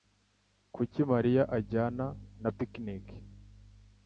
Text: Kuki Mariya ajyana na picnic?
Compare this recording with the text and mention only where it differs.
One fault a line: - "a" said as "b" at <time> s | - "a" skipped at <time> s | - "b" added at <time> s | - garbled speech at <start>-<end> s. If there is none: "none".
none